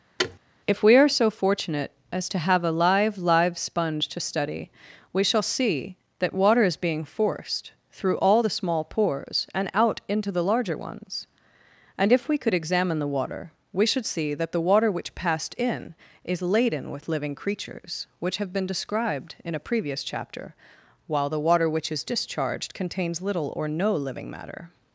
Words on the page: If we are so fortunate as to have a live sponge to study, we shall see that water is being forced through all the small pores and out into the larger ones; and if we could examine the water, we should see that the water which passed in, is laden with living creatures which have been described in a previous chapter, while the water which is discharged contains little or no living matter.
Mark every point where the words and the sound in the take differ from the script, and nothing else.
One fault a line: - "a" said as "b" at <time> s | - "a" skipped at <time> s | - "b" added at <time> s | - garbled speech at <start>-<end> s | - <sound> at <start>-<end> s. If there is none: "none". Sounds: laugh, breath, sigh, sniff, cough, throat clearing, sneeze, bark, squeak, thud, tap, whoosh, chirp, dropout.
- thud at 0.2-0.4 s
- "live" added at 3.2 s